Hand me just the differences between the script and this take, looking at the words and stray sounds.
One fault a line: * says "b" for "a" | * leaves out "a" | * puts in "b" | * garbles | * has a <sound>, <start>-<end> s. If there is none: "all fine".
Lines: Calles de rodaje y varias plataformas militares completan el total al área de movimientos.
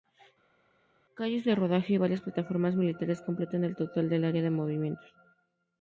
* says "del" for "al"